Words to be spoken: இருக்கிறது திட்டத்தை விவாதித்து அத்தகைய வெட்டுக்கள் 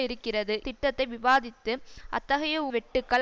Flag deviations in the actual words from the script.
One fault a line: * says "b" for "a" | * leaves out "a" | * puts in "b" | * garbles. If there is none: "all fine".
all fine